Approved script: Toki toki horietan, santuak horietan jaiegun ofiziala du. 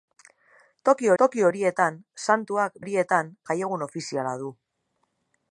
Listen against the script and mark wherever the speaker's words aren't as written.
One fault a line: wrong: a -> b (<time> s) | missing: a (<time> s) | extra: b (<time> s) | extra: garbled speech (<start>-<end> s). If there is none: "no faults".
no faults